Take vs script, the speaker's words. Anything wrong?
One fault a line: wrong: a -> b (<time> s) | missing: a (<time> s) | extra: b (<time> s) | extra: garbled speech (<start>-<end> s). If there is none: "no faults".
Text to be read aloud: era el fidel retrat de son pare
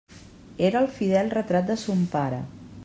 no faults